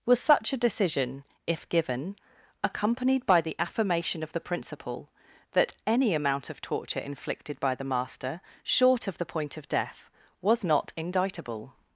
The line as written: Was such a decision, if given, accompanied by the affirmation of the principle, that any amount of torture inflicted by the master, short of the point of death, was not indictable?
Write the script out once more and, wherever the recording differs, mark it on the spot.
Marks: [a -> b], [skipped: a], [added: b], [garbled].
Was such a decision, if given, accompanied by the affirmation of the principle, that any amount of torture inflicted by the master, short of the point of death, was not indictable?